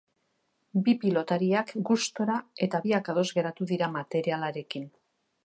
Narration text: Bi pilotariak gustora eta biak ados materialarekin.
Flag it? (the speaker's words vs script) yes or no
yes